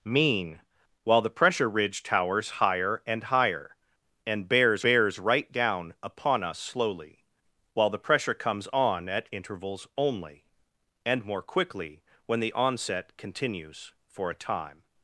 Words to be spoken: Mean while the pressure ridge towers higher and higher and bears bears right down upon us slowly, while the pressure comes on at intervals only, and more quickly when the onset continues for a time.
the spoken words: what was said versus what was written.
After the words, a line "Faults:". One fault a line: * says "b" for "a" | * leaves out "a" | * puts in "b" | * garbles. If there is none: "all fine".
Mean while the pressure ridge towers higher and higher and bears bears right down upon us slowly, while the pressure comes on at intervals only, and more quickly when the onset continues for a time.
Faults:
all fine